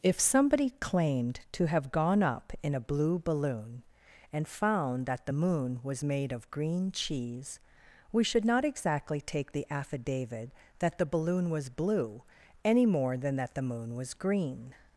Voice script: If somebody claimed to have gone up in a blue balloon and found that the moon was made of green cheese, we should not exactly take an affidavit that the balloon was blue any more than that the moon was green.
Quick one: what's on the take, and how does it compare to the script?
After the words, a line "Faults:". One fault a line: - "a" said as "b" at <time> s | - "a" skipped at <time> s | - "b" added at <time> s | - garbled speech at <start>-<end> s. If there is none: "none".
If somebody claimed to have gone up in a blue balloon and found that the moon was made of green cheese, we should not exactly take the affidavit that the balloon was blue any more than that the moon was green.
Faults:
- "an" said as "the" at 9.5 s